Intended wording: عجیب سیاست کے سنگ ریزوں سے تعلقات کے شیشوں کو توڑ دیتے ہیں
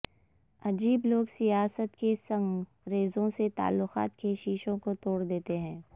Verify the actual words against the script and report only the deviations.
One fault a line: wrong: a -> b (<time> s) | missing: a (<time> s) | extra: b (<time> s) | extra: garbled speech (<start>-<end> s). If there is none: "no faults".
extra: لوگ (1.0 s)